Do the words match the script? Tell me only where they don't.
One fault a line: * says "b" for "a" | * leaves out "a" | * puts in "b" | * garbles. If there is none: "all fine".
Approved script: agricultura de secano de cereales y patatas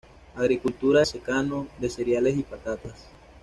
* leaves out "de"